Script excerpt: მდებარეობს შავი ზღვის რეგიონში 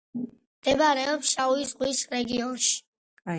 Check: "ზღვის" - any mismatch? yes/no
no